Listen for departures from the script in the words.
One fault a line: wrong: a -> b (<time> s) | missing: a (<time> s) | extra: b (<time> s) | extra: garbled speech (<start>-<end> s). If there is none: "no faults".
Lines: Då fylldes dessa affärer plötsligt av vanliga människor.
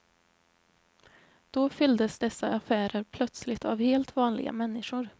extra: helt (3.8 s)